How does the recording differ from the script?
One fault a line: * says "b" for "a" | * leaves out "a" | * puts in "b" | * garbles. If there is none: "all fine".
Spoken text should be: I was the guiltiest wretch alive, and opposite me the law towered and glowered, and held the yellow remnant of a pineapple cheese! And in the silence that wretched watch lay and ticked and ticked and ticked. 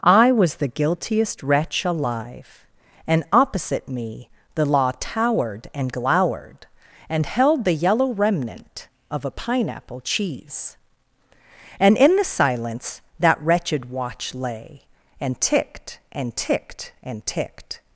all fine